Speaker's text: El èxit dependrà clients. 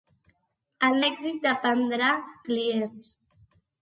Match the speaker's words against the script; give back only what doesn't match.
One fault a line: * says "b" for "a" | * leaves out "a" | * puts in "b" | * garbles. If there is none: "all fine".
all fine